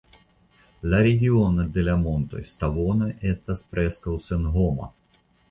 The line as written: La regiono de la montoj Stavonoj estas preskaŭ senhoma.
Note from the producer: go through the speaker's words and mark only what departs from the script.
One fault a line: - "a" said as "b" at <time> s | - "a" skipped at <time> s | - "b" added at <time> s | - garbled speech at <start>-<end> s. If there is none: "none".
none